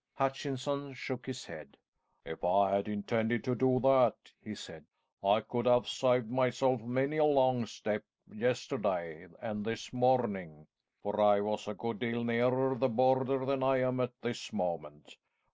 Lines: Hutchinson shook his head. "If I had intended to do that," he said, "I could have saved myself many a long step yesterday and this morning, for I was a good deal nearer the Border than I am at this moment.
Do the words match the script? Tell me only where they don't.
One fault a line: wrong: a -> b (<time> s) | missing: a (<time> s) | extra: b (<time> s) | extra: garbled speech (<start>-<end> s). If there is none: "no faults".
no faults